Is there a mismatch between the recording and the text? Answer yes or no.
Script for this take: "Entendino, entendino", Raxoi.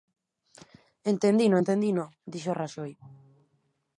yes